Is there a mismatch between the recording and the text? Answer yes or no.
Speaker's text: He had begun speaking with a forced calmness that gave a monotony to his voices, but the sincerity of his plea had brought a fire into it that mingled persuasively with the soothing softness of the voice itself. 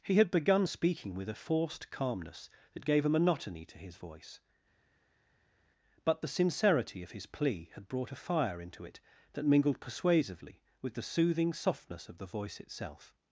yes